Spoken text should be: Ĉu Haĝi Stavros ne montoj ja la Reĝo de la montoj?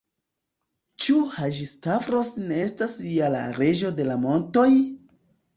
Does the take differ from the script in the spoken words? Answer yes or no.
yes